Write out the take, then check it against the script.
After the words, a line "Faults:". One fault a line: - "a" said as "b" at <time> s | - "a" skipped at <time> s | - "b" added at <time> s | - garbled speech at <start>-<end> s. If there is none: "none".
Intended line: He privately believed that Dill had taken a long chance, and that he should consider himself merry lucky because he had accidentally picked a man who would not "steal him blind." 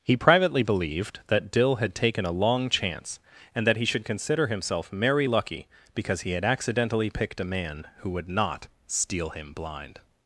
He privately believed that Dill had taken a long chance, and that he should consider himself merry lucky because he had accidentally picked a man who would not "steal him blind."
Faults:
none